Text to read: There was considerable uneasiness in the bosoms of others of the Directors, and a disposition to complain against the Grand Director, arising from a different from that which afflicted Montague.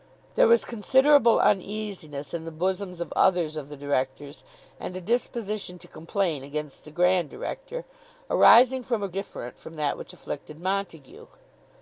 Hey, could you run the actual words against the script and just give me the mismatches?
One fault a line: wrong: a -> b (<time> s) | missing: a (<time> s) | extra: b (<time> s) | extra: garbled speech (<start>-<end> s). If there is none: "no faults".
no faults